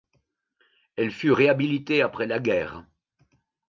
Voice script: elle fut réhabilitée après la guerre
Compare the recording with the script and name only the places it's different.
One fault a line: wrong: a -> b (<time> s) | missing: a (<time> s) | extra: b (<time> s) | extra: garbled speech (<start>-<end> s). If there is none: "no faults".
no faults